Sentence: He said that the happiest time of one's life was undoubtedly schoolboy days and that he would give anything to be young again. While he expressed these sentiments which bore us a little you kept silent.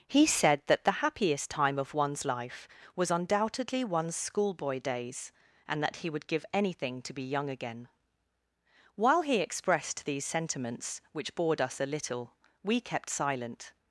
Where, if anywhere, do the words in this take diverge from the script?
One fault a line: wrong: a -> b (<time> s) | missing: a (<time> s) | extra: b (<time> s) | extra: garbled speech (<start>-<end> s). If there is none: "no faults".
extra: one's (3.8 s)
wrong: bore -> bored (11.3 s)
wrong: you -> we (12.6 s)